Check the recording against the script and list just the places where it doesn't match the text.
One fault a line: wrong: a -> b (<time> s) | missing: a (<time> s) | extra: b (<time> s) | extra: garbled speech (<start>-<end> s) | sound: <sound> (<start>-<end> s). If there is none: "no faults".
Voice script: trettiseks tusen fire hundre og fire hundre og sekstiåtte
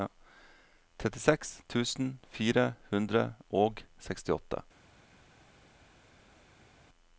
missing: fire hundre og (3.8 s)